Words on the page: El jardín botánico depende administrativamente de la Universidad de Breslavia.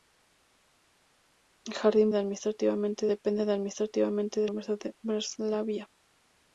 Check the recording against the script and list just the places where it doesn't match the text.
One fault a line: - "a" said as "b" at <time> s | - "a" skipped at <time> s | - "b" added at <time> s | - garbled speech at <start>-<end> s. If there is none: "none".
- "botánico" said as "administrativamente" at 2.1 s
- "la" skipped at 4.5 s